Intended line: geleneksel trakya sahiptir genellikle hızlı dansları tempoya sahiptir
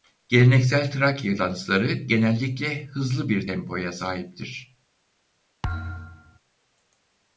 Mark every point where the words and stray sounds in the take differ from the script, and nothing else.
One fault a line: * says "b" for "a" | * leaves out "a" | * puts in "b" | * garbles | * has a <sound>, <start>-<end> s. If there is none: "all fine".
* says "dansları" for "sahiptir"
* says "bir" for "dansları"
* has a thud, 5.6-6.4 s